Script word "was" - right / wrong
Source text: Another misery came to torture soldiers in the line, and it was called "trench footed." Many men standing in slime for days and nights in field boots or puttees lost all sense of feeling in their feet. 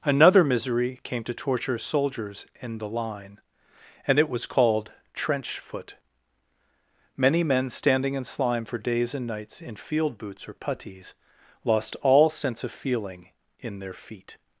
right